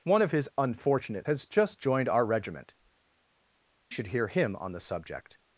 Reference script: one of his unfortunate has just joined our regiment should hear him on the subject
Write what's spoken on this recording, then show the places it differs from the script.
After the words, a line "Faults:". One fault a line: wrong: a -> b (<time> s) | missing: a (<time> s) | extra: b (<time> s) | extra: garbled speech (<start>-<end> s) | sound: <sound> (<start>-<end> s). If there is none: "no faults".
one of his unfortunate has just joined our regiment should hear him on the subject
Faults:
no faults